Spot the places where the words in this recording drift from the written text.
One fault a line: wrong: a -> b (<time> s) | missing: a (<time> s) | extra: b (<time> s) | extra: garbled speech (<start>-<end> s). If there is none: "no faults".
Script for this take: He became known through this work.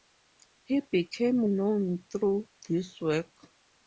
no faults